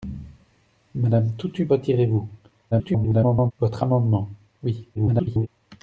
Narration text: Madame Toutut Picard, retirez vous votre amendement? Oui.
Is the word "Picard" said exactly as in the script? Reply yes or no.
no